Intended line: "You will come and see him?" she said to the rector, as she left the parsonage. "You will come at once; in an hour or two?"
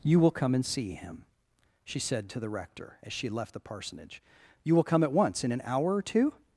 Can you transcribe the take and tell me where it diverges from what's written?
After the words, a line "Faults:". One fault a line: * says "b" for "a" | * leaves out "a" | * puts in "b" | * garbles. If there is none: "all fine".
"You will come and see him?" she said to the rector, as she left the parsonage. "You will come at once; in an hour or two?"
Faults:
all fine